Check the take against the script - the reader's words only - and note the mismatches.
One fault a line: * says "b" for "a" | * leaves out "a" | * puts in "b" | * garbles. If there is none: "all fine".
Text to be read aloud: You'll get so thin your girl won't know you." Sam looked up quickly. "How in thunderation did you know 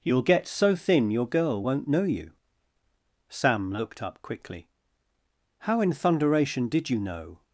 all fine